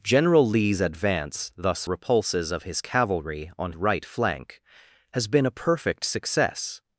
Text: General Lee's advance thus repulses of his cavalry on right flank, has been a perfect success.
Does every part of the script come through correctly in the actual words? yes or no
yes